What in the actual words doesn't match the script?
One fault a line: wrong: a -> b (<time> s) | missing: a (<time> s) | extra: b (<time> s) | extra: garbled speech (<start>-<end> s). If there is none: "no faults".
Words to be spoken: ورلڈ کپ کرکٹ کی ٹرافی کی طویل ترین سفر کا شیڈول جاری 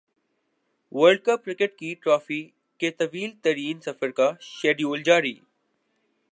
wrong: کی -> کے (2.8 s)